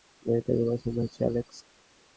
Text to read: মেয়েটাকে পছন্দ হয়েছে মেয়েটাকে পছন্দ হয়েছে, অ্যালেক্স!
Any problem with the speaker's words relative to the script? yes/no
yes